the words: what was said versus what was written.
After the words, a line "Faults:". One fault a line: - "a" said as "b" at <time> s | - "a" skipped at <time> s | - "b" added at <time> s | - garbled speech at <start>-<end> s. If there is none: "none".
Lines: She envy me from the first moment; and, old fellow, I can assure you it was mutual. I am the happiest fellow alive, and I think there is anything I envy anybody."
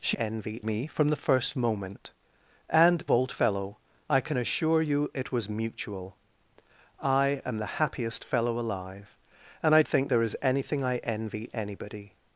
She envy me from the first moment; and, old fellow, I can assure you it was mutual. I am the happiest fellow alive, and I think there is anything I envy anybody."
Faults:
none